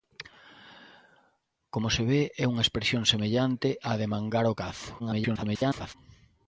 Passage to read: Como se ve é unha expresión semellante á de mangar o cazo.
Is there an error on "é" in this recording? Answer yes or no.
no